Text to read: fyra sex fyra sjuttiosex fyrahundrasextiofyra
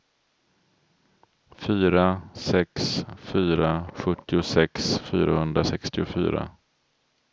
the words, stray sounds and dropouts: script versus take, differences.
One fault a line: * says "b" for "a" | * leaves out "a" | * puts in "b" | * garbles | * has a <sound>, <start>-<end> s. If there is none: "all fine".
all fine